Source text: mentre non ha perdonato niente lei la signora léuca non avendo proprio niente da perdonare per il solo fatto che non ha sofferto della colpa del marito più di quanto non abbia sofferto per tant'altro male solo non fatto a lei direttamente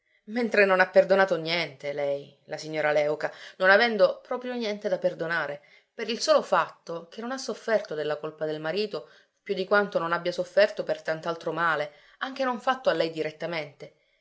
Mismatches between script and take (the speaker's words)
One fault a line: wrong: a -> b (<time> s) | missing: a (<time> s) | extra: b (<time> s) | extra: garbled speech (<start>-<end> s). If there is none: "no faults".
wrong: solo -> anche (12.2 s)